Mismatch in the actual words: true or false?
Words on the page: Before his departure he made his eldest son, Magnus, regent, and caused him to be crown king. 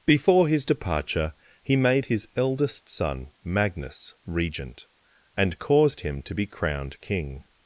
true